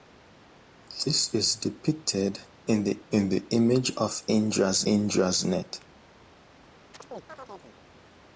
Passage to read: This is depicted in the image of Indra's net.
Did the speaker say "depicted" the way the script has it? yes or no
yes